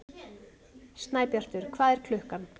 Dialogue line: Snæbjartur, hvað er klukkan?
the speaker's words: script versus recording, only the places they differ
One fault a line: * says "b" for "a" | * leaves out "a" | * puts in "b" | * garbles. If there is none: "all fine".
all fine